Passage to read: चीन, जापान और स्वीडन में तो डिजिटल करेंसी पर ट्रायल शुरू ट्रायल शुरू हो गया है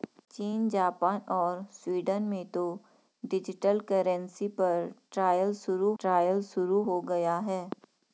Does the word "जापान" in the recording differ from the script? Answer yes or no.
no